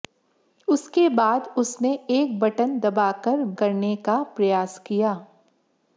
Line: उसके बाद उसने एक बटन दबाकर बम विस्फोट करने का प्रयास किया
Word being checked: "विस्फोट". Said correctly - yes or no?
no